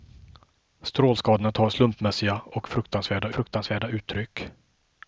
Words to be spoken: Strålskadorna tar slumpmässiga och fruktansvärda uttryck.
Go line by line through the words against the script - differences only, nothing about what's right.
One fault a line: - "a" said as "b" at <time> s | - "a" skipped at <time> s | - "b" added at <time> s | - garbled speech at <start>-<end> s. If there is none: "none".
- "fruktansvärda" added at 3.3 s